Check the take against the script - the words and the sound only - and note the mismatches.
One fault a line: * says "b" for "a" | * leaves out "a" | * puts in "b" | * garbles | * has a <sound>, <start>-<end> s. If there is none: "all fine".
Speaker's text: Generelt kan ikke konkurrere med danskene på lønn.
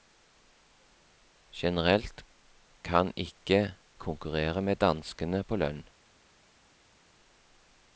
all fine